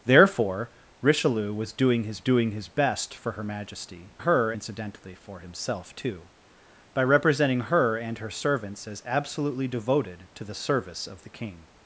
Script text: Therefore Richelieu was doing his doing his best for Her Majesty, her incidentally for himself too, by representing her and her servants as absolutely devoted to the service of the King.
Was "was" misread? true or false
false